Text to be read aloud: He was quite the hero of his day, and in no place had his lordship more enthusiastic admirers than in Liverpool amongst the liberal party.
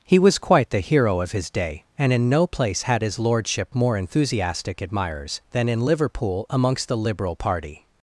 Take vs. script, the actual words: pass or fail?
pass